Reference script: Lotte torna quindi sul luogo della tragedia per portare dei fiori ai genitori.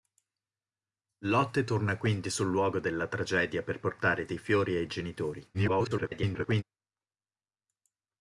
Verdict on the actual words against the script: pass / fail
fail